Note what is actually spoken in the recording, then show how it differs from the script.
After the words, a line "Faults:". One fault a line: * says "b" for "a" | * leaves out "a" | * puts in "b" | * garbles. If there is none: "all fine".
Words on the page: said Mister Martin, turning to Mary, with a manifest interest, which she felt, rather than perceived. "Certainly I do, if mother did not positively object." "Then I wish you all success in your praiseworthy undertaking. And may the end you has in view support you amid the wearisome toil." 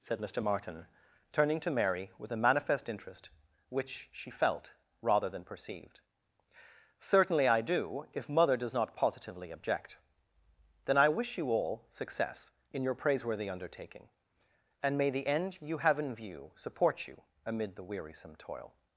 said Mister Martin, turning to Mary, with a manifest interest, which she felt, rather than perceived. "Certainly I do, if mother does not positively object." "Then I wish you all success in your praiseworthy undertaking. And may the end you have in view support you amid the wearisome toil."
Faults:
* says "does" for "did"
* says "have" for "has"